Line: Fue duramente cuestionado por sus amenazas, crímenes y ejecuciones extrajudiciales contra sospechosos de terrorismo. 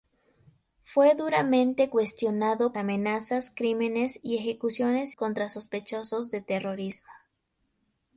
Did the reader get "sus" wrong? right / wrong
wrong